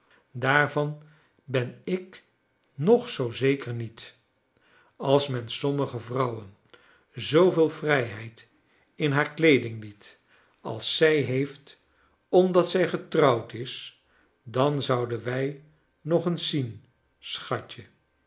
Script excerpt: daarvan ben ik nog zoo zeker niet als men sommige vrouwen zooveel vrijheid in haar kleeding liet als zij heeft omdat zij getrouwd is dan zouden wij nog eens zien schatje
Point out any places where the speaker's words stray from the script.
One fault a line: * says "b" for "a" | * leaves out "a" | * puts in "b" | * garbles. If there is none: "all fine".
all fine